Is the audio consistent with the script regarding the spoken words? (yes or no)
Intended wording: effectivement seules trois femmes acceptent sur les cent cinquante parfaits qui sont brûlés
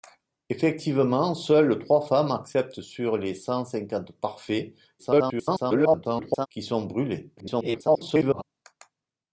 no